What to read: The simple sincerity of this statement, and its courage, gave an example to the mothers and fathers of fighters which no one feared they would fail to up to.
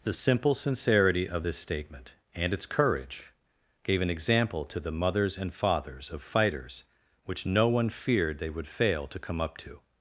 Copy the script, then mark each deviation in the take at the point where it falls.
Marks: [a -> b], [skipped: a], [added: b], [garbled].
The simple sincerity of this statement, and its courage, gave an example to the mothers and fathers of fighters which no one feared they would fail to [added: come] up to.